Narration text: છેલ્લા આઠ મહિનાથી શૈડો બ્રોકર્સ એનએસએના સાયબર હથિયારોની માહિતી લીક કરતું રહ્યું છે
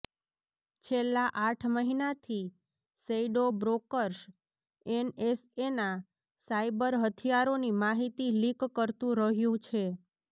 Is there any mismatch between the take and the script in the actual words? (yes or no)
no